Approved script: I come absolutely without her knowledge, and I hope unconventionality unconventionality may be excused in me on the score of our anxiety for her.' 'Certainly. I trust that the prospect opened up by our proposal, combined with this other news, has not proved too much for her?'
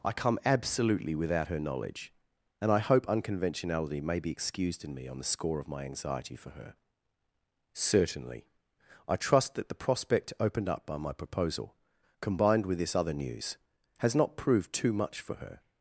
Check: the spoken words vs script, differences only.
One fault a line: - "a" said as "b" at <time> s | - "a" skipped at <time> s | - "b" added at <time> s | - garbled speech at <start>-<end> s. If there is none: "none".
- "unconventionality" skipped at 4.0 s
- "our" said as "my" at 5.7 s
- "our" said as "my" at 11.0 s